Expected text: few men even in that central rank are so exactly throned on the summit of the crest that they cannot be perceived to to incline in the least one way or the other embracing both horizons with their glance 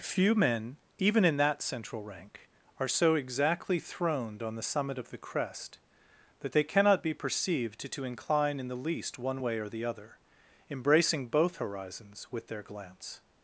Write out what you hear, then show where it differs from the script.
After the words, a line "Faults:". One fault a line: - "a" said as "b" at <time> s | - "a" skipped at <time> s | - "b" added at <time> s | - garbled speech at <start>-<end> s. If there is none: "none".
few men even in that central rank are so exactly throned on the summit of the crest that they cannot be perceived to to incline in the least one way or the other embracing both horizons with their glance
Faults:
none